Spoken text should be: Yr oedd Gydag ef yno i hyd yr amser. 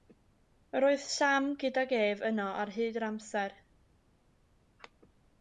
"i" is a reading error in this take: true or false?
true